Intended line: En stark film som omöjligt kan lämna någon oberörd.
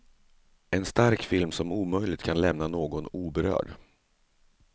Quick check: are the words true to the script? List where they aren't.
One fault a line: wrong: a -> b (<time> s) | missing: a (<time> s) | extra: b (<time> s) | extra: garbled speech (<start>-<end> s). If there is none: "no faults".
no faults